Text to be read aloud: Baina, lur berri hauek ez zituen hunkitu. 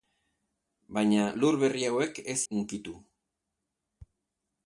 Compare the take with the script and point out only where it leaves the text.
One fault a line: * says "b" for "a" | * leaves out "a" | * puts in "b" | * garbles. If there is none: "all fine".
* leaves out "zituen"